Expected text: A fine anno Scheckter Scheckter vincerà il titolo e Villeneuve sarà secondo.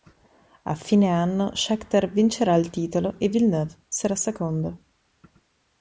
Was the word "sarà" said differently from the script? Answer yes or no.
no